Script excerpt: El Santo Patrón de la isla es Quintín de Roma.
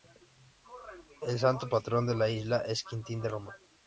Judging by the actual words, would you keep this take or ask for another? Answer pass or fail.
pass